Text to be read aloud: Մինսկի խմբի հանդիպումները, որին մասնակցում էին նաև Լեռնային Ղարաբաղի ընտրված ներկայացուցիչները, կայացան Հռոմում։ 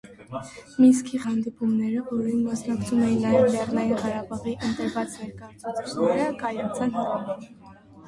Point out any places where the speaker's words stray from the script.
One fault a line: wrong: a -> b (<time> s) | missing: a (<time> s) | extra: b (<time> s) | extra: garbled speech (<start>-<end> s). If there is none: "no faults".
missing: խմբի (1.2 s)